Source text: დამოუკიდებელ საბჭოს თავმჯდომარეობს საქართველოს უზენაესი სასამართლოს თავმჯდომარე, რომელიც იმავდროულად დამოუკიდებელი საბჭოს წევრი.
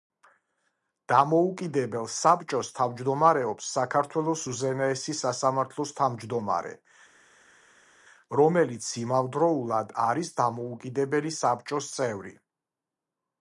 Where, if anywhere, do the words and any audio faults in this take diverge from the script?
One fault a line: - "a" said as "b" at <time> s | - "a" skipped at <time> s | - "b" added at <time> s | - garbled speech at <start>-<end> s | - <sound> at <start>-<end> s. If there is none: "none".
- "არის" added at 10.1 s